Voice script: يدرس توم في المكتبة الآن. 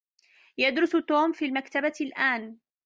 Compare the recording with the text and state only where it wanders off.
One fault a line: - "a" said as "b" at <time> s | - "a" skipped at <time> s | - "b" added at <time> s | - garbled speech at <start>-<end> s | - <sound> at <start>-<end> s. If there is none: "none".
none